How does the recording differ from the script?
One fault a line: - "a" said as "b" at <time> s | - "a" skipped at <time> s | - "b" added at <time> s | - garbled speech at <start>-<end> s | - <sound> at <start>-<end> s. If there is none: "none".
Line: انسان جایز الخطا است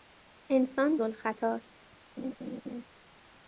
- "جایز" skipped at 1.0 s
- laugh at 2.2-2.8 s